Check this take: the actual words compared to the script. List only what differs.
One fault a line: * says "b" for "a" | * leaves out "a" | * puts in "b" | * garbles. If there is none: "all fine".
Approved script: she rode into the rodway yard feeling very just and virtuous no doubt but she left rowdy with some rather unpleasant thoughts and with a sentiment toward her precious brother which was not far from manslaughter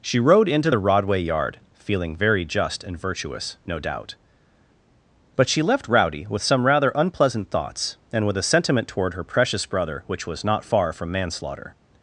all fine